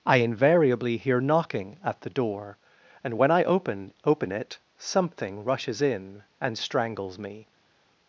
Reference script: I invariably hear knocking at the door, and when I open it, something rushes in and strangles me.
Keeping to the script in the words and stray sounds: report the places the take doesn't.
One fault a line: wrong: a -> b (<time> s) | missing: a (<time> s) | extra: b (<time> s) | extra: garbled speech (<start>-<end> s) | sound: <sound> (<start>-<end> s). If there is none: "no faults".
extra: open (4.0 s)